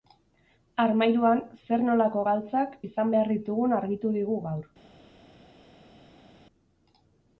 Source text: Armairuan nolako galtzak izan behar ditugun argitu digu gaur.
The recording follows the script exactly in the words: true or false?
false